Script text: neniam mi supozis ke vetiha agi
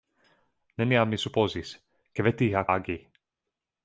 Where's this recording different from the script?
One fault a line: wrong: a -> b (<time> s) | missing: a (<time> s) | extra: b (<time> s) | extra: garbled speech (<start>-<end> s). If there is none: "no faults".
no faults